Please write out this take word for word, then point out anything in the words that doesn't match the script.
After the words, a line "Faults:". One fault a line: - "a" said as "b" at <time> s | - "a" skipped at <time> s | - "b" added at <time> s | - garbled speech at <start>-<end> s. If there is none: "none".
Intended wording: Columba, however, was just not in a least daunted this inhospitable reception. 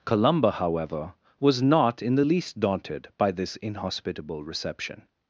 Columba, however, was not in the least daunted by this inhospitable reception.
Faults:
- "just" skipped at 1.6 s
- "a" said as "the" at 2.2 s
- "by" added at 3.2 s